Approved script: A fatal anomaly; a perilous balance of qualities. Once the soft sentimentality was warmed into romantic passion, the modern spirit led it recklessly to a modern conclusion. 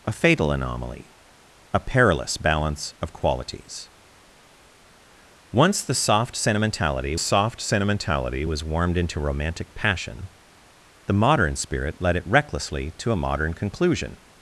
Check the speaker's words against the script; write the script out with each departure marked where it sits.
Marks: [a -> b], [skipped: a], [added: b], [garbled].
A fatal anomaly; a perilous balance of qualities. Once the soft sentimentality [added: soft sentimentality] was warmed into romantic passion, the modern spirit led it recklessly to a modern conclusion.